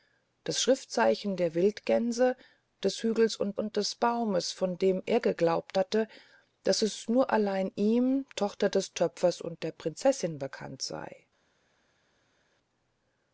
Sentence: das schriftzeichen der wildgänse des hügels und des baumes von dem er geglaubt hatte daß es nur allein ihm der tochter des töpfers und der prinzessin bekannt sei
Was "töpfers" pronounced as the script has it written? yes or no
yes